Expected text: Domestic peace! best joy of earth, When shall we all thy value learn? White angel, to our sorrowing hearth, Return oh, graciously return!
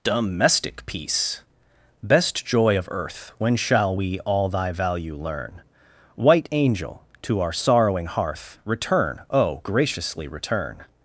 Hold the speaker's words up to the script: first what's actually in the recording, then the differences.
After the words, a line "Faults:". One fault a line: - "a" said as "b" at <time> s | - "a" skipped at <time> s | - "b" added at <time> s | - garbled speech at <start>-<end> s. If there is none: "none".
Domestic peace! best joy of earth, When shall we all thy value learn? White angel, to our sorrowing hearth, Return oh, graciously return!
Faults:
none